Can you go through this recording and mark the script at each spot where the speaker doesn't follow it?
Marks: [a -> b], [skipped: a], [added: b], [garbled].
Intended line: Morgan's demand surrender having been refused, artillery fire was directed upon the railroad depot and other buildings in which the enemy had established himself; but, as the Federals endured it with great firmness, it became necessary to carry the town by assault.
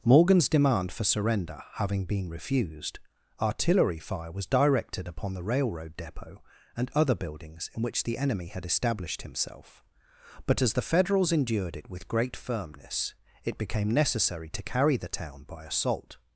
Morgan's demand [added: for] surrender having been refused, artillery fire was directed upon the railroad depot and other buildings in which the enemy had established himself; but, as the Federals endured it with great firmness, it became necessary to carry the town by assault.